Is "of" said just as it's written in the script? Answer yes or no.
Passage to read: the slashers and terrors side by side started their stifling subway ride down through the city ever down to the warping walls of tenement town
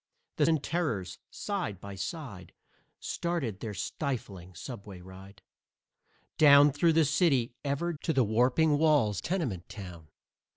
no